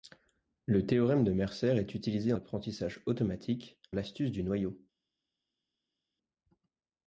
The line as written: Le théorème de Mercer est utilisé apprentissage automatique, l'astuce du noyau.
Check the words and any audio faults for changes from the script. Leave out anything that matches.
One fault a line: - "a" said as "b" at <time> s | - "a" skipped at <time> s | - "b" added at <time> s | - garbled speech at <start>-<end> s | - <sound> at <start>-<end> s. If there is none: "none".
none